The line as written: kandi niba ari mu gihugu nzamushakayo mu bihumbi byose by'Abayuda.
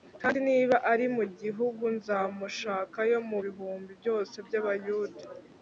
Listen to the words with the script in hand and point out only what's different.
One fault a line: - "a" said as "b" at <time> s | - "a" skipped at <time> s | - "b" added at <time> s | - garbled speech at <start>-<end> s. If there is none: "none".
none